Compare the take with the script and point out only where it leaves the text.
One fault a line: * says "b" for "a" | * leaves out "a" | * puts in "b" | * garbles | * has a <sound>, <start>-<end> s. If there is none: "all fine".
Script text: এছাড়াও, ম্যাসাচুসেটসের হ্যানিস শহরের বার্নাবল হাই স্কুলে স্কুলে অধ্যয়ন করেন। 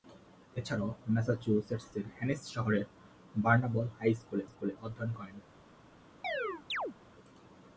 * has a chirp, 6.2-6.9 s